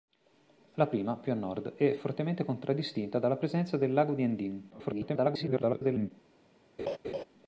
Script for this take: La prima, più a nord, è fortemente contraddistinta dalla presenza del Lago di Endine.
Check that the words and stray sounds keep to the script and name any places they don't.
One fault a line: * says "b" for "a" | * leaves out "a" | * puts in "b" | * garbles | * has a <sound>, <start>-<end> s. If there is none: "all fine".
* garbles
* has a laugh, 6.8-7.2 s